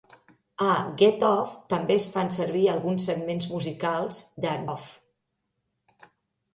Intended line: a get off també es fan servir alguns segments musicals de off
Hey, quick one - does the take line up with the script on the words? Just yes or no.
yes